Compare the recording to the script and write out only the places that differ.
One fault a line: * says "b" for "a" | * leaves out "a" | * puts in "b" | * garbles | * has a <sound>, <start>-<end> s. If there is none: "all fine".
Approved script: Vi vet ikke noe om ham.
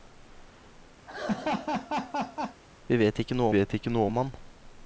* has a laugh, 1.1-2.6 s
* puts in "vet ikke noe"